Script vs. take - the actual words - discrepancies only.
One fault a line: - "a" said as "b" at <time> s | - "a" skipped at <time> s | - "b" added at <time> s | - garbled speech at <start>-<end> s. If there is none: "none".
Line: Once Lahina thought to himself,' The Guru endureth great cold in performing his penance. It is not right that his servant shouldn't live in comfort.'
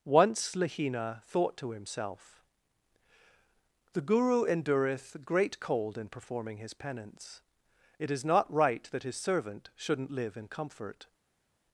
none